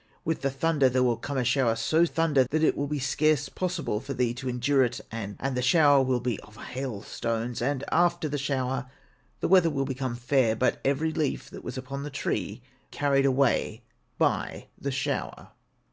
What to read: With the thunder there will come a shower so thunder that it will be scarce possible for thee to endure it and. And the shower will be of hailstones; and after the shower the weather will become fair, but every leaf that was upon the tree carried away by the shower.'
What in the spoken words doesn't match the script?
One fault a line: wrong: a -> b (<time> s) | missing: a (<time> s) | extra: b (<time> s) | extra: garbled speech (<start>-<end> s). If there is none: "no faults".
no faults